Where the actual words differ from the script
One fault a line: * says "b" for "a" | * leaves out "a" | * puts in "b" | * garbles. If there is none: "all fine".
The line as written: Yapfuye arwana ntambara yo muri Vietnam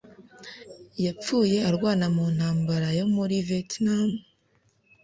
* puts in "mu"